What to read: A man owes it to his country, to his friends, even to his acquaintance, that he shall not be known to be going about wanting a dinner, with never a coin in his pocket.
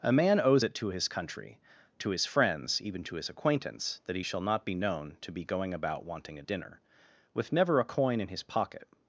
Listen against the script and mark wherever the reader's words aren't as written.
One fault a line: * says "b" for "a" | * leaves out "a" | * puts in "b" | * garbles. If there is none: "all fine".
all fine